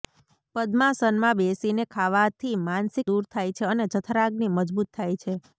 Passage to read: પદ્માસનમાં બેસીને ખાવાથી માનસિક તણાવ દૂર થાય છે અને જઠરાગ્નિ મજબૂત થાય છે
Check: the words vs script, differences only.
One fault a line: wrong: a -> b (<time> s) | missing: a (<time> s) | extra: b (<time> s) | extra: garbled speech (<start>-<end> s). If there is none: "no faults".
missing: તણાવ (3.1 s)